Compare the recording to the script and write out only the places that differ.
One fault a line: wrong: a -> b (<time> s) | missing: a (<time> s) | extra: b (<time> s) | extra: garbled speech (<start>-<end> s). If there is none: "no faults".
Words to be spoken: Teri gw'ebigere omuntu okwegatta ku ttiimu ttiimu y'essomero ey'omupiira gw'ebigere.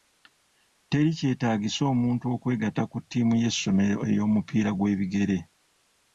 wrong: gw'ebigere -> kyetaagisa (1.2 s)
missing: ttiimu (3.3 s)